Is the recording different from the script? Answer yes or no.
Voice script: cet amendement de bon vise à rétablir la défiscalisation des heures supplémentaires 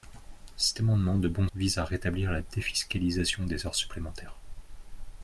no